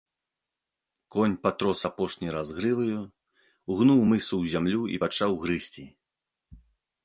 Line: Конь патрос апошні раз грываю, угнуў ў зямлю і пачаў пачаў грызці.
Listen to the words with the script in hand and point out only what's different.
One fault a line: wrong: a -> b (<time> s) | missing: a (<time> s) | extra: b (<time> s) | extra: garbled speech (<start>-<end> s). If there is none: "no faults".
extra: мысу (4.1 s)
missing: пачаў (5.3 s)